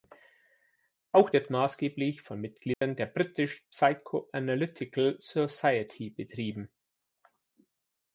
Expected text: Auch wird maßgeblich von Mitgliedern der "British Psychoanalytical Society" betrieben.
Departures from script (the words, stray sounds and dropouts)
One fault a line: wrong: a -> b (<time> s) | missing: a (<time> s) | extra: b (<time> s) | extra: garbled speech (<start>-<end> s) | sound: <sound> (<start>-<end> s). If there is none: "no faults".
sound: dropout (2.7-2.8 s)